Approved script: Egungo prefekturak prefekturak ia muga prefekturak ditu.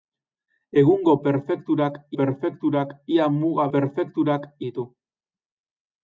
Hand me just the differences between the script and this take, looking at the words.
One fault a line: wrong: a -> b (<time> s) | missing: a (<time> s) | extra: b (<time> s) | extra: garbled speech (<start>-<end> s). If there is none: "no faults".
no faults